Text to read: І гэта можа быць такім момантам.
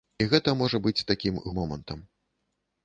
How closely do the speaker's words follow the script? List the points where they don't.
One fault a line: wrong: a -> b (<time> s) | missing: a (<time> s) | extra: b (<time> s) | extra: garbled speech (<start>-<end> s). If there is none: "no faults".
no faults